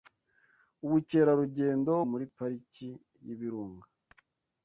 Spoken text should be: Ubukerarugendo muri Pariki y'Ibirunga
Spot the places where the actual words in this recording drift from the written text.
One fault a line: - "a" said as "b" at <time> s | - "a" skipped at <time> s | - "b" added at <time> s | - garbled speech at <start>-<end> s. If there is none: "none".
none